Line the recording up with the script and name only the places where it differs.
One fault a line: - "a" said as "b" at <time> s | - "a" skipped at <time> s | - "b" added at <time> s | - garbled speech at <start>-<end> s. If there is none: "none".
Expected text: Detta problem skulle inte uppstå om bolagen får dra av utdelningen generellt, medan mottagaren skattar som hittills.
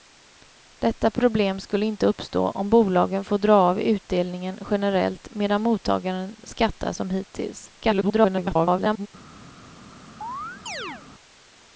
- garbled speech at 7.8-9.1 s